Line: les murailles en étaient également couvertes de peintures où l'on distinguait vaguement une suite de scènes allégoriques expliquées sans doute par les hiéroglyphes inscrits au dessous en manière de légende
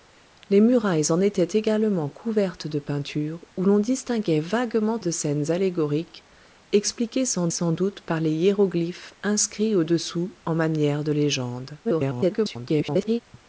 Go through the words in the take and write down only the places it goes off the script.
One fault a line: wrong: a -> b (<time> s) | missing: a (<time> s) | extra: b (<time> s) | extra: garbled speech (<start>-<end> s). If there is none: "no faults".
missing: une suite (5.0 s)
extra: sans (7.5 s)
extra: garbled speech (11.8-13.2 s)